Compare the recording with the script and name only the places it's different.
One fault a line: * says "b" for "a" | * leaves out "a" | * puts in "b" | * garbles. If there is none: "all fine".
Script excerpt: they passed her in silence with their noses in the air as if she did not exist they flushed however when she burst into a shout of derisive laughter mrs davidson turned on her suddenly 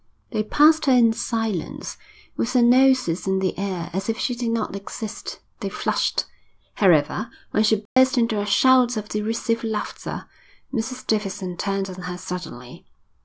all fine